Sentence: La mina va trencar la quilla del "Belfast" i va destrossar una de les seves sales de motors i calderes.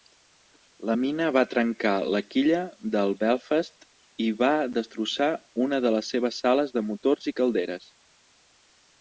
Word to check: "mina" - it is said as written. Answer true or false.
true